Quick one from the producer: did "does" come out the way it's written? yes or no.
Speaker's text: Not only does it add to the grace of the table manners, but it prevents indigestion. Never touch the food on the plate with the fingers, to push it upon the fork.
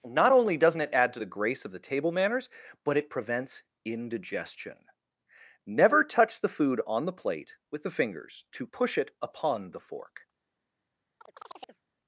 no